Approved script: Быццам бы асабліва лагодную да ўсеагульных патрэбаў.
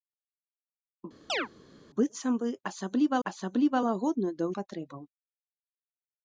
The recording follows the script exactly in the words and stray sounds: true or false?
false